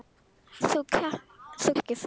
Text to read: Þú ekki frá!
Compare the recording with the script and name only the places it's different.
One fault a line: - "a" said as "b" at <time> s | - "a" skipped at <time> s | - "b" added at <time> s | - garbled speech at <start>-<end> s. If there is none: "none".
none